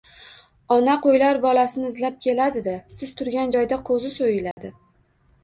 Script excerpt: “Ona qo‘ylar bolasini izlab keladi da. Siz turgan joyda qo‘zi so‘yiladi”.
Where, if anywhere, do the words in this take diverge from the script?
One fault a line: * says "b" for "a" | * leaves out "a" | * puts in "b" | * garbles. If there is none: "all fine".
all fine